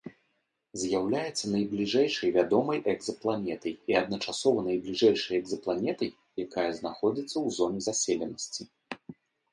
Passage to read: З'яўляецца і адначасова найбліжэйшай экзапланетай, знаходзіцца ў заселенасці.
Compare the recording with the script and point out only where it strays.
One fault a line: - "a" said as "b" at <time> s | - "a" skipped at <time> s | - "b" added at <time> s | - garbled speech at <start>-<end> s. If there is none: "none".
- "найбліжэйшай вядомай экзапланетай" added at 1.6 s
- "якая" added at 6.4 s
- "зоне" added at 7.6 s